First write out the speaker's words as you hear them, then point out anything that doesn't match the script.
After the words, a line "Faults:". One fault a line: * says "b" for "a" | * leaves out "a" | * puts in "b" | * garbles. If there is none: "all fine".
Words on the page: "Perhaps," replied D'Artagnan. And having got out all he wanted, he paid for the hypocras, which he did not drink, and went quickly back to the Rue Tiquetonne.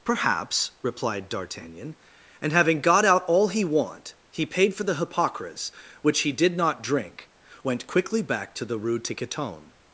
"Perhaps," replied D'Artagnan. And having got out all he want, he paid for the hypocras, which he did not drink, went quickly back to the Rue Tiquetonne.
Faults:
* says "want" for "wanted"
* leaves out "and"